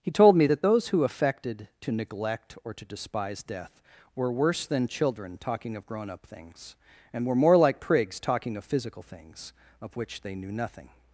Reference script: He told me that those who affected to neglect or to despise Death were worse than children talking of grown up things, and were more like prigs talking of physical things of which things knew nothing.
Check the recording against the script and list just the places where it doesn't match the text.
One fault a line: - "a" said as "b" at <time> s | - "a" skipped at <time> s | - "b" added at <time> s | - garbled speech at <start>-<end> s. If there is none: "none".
- "things" said as "they" at 10.2 s